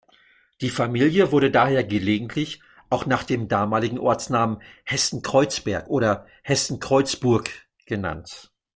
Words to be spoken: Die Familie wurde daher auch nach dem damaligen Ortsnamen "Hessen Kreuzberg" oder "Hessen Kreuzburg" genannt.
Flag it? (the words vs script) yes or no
yes